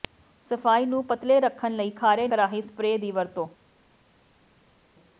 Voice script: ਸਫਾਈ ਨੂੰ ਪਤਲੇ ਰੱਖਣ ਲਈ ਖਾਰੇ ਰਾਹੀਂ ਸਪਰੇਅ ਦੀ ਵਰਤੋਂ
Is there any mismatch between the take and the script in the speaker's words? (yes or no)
no